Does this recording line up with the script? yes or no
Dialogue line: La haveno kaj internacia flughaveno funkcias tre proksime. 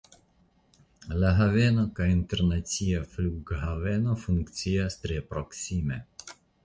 yes